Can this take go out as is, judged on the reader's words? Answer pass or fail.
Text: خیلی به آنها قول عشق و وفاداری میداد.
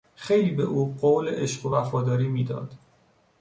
fail